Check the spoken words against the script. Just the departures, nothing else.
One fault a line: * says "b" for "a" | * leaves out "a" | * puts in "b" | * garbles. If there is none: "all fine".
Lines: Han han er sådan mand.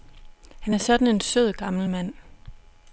* leaves out "han"
* puts in "en sød gammel"